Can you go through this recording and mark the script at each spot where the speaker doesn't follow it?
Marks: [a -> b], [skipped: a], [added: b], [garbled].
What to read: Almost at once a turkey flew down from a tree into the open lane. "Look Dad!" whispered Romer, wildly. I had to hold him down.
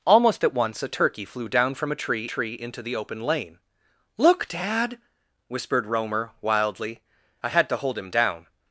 Almost at once a turkey flew down from a tree [added: tree] into the open lane. "Look Dad!" whispered Romer, wildly. I had to hold him down.